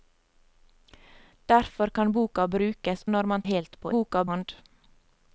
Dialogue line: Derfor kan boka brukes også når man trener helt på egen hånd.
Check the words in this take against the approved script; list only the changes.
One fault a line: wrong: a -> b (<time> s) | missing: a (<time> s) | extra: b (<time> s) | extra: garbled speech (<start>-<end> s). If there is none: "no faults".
missing: også (3.0 s)
missing: trener (3.4 s)
wrong: egen -> boka (3.9 s)